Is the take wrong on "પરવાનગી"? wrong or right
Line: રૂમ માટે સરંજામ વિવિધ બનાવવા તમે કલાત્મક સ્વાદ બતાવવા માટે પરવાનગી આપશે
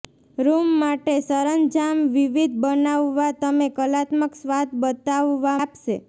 wrong